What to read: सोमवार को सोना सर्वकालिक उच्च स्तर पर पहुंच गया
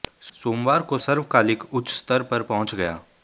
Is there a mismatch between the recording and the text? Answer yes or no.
yes